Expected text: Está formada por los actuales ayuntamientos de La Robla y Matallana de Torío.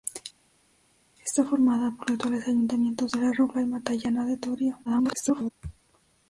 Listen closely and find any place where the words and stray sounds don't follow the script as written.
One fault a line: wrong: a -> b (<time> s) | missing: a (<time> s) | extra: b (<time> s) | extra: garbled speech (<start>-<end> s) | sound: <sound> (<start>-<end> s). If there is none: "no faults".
missing: los (2.1 s)
extra: garbled speech (4.9-5.5 s)